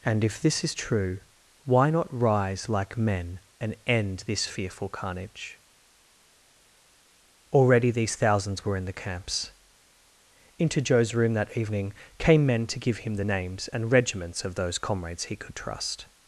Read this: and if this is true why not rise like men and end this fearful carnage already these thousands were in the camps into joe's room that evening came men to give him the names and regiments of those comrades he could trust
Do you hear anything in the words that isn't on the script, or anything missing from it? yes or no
no